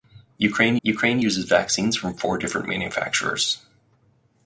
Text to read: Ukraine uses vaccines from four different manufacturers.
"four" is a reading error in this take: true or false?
false